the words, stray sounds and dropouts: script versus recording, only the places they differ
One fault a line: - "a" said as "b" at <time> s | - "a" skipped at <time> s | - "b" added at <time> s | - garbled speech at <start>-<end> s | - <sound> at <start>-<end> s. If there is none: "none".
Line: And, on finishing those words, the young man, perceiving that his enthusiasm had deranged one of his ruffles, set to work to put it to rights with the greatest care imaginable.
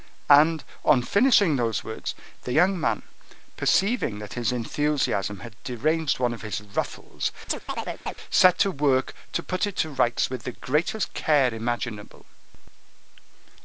- chirp at 7.5-8.1 s